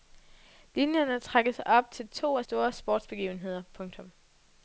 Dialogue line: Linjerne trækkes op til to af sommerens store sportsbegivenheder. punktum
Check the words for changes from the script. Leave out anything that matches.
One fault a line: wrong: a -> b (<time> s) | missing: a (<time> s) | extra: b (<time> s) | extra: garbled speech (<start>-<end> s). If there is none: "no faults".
missing: sommerens (2.4 s)